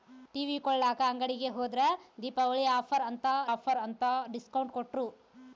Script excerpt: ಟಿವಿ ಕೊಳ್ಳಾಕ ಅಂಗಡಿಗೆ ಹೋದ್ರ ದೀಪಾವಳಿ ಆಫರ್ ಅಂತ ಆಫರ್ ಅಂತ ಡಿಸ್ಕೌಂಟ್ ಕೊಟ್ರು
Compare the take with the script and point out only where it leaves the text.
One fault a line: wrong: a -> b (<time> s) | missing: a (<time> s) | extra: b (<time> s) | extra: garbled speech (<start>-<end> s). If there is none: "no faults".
no faults